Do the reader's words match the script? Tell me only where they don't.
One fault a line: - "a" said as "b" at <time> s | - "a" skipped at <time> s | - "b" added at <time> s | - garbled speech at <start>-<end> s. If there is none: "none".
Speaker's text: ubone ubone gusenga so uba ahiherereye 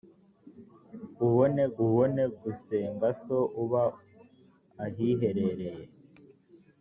none